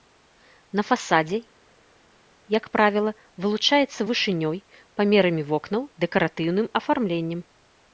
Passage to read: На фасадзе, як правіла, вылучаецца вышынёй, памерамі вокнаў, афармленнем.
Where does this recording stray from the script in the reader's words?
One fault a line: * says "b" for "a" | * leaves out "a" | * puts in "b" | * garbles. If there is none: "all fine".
* puts in "дэкаратыўным"